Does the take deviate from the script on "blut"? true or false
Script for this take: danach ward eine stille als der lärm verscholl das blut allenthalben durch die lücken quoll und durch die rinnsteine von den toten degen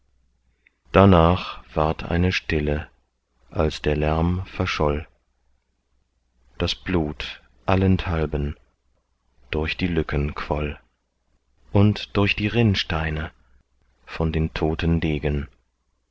false